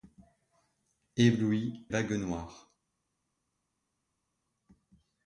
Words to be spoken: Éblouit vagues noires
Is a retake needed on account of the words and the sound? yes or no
no